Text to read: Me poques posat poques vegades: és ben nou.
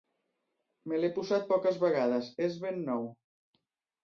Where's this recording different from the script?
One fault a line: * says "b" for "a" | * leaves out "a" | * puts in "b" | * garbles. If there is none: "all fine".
* says "l'he" for "poques"